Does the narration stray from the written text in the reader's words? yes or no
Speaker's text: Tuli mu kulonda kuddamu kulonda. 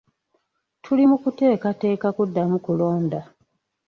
yes